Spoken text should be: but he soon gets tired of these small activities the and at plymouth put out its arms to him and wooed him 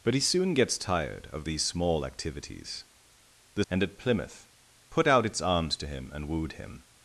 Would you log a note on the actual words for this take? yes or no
no